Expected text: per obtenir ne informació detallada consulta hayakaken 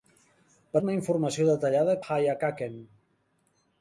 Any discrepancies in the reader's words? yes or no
yes